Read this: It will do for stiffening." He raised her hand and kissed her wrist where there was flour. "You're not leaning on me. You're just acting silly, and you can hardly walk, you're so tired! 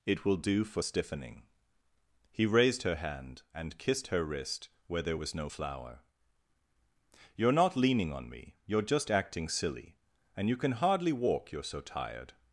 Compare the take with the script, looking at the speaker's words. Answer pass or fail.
fail